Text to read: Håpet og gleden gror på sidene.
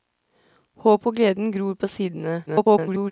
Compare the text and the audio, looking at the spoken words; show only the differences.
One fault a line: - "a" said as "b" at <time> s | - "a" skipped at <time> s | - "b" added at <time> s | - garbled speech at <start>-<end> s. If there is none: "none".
- garbled speech at 2.5-3.1 s